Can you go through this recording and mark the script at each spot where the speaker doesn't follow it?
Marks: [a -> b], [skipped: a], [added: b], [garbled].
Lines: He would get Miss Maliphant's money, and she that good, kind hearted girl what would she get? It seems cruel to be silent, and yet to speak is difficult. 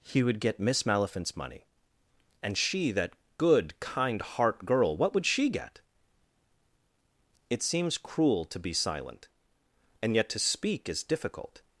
He would get Miss Maliphant's money, and she that good, kind [hearted -> heart] girl what would she get? It seems cruel to be silent, and yet to speak is difficult.